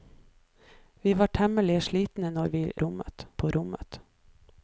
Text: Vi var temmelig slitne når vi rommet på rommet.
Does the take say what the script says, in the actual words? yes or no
yes